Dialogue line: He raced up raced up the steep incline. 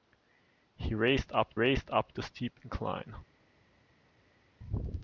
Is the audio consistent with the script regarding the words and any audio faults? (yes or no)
yes